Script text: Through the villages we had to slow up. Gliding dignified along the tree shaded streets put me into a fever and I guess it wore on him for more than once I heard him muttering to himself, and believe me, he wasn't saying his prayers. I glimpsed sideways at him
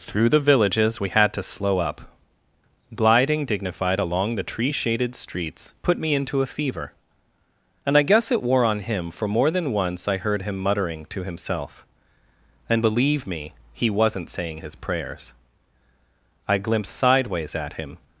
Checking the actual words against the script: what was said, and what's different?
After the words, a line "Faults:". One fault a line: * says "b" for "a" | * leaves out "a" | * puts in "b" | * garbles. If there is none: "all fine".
Through the villages we had to slow up. Gliding dignified along the tree shaded streets put me into a fever and I guess it wore on him for more than once I heard him muttering to himself, and believe me, he wasn't saying his prayers. I glimpsed sideways at him
Faults:
all fine